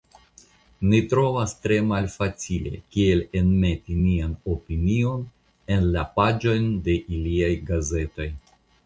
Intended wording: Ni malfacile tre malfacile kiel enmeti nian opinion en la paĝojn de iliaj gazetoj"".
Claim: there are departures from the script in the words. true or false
true